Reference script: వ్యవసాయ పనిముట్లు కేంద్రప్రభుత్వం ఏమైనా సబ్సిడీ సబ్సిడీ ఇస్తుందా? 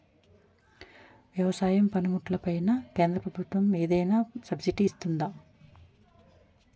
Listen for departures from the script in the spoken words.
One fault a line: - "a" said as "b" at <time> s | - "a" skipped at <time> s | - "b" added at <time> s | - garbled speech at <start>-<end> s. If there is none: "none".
- "పైన" added at 2.4 s
- "సబ్సిడీ" skipped at 4.8 s